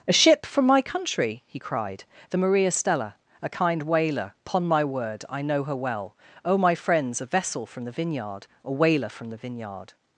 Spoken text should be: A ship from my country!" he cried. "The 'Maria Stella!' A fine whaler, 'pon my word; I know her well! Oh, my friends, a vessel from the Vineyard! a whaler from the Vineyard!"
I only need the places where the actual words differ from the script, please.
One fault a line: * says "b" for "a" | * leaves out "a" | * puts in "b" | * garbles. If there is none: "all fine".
* says "kind" for "fine"